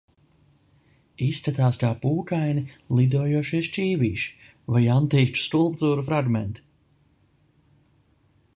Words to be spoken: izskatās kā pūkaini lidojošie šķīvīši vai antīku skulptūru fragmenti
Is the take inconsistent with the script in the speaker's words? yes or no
no